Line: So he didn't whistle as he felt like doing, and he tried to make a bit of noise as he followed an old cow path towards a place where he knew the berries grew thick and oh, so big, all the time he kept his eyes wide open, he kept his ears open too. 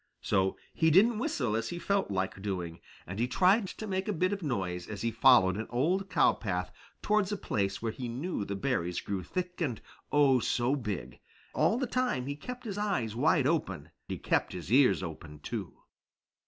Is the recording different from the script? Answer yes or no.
no